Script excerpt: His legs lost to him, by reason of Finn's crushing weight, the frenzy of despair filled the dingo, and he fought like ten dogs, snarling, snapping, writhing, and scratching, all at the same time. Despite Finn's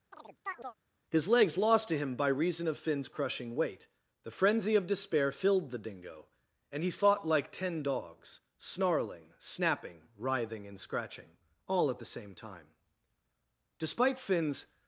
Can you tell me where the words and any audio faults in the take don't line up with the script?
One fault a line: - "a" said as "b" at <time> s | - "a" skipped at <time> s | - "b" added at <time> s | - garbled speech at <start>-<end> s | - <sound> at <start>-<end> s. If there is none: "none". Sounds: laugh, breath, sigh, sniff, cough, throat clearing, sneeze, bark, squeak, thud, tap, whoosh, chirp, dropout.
- chirp at 0.1-0.8 s